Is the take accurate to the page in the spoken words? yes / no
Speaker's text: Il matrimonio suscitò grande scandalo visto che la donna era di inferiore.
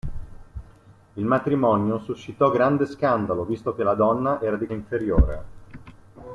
yes